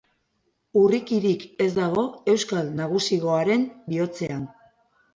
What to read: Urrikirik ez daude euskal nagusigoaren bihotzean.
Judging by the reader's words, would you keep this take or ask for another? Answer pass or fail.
fail